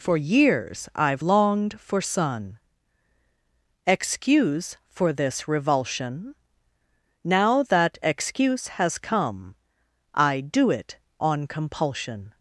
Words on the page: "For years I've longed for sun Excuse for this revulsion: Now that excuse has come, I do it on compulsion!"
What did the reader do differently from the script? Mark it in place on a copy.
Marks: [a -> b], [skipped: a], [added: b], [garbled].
"For years I've longed for sun Excuse for this revulsion: Now that excuse has come, I do it on compulsion!"